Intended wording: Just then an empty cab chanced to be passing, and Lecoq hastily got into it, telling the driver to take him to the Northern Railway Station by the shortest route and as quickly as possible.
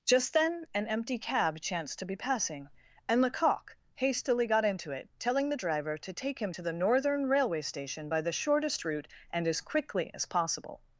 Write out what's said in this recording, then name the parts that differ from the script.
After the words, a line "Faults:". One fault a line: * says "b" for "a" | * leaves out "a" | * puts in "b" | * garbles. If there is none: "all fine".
Just then an empty cab chanced to be passing, and Lecoq hastily got into it, telling the driver to take him to the Northern Railway Station by the shortest route and as quickly as possible.
Faults:
all fine